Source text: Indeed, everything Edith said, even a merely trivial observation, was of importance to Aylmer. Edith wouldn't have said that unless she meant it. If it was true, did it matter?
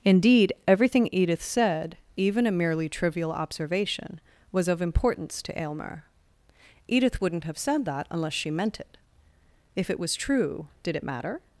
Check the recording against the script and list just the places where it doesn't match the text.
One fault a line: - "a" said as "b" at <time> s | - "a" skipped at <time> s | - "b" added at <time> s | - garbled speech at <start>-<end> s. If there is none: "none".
none